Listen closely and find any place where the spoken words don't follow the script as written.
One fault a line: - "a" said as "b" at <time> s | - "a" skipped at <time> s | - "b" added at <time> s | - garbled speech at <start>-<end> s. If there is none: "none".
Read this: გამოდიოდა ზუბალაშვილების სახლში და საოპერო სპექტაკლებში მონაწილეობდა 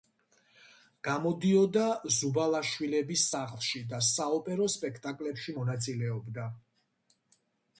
none